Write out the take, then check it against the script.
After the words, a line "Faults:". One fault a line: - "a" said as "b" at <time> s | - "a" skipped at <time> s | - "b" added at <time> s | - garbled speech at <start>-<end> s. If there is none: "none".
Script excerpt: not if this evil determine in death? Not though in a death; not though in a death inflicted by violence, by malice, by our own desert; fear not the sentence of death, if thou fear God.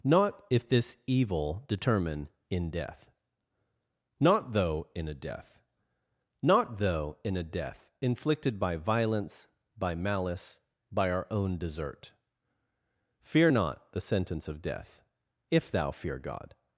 not if this evil determine in death? Not though in a death; not though in a death inflicted by violence, by malice, by our own desert; fear not the sentence of death, if thou fear God.
Faults:
none